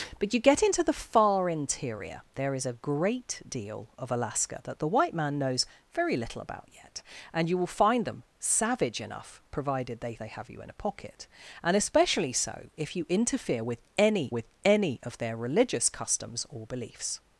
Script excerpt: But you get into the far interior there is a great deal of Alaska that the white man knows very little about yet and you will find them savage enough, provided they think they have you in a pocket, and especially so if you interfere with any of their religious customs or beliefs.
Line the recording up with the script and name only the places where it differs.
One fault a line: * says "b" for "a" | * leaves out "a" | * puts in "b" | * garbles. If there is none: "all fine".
* leaves out "think"
* puts in "with any"